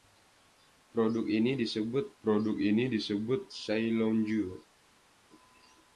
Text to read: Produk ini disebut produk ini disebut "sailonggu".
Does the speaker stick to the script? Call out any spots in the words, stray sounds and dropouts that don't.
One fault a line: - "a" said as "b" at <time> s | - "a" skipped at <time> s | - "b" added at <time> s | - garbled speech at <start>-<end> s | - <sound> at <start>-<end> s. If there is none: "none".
none